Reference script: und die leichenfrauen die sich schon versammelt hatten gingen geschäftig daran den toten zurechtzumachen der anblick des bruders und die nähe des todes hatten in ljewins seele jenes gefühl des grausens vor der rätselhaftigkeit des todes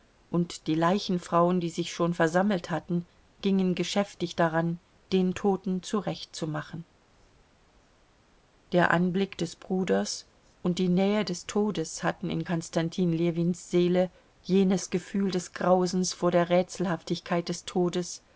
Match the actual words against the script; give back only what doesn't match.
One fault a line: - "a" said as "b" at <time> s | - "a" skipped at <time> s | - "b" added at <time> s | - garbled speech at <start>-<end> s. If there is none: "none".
- "konstantin" added at 12.4 s